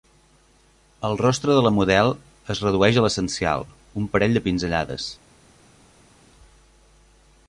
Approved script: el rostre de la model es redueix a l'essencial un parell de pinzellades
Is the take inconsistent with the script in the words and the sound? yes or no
no